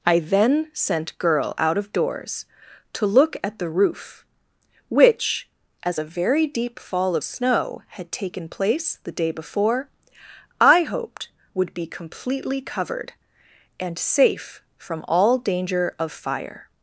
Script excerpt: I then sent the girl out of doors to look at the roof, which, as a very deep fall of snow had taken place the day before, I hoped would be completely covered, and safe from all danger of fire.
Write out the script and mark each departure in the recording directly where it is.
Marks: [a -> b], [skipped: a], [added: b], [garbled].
I then sent [skipped: the] girl out of doors to look at the roof, which, as a very deep fall of snow had taken place the day before, I hoped would be completely covered, and safe from all danger of fire.